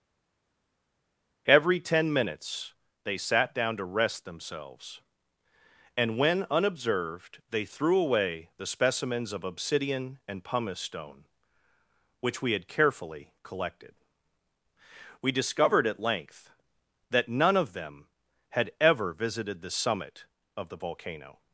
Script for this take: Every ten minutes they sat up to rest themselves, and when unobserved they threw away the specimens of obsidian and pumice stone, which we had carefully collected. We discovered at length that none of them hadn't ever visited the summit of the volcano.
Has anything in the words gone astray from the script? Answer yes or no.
yes